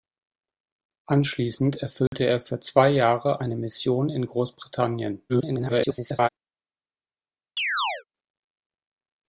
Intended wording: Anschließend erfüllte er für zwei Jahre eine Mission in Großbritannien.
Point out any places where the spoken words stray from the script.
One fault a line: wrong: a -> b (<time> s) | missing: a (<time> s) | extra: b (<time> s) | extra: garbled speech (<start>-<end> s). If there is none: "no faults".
extra: garbled speech (5.3-6.3 s)